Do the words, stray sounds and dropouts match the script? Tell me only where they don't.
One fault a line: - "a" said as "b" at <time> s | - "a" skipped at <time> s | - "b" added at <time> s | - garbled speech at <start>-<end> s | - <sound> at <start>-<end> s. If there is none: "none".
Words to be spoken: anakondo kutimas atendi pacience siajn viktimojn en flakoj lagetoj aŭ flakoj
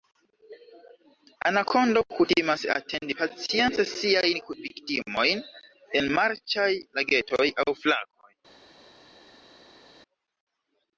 - "flakoj" said as "marĉaj" at 6.2 s